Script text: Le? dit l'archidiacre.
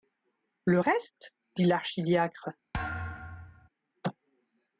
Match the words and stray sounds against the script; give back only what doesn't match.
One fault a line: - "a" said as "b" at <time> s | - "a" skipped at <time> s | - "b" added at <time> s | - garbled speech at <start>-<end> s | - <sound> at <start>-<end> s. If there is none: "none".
- "reste" added at 0.8 s
- thud at 2.7-3.7 s